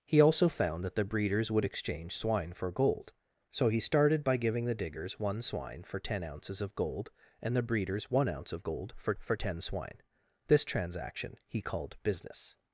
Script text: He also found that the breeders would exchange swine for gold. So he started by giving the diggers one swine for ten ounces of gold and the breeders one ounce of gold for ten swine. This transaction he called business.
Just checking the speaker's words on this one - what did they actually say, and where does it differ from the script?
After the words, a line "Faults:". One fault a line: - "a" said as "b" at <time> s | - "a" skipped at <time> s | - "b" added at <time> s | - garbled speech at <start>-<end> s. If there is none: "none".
He also found that the breeders would exchange swine for gold. So he started by giving the diggers one swine for ten ounces of gold and the breeders one ounce of gold for for ten swine. This transaction he called business.
Faults:
- "for" added at 9.2 s